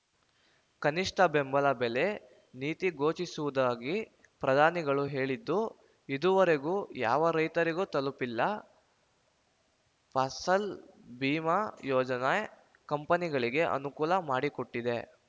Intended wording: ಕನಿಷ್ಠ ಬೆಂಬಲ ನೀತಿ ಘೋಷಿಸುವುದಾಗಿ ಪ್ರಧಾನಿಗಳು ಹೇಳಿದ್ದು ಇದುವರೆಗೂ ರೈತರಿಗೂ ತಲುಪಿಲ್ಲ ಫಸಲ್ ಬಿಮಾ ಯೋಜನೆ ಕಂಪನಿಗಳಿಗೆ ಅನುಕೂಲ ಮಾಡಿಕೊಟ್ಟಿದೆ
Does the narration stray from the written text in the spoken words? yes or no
yes